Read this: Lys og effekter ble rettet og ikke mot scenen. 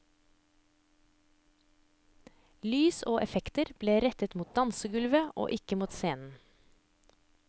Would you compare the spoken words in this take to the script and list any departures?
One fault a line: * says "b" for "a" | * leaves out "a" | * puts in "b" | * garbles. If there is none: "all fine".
* puts in "mot dansegulvet"